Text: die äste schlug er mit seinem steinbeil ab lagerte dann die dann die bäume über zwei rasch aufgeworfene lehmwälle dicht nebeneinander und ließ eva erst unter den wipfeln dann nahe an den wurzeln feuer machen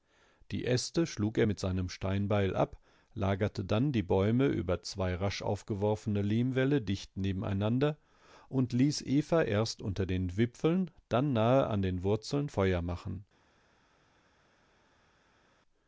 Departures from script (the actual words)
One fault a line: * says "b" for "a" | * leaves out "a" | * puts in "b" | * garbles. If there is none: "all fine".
* leaves out "dann die"